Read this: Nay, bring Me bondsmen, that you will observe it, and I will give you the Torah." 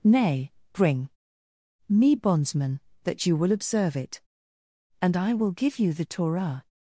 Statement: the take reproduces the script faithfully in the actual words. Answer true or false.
true